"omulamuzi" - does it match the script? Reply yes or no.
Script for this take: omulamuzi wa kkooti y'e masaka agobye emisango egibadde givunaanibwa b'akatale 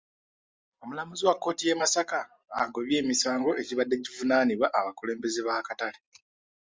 yes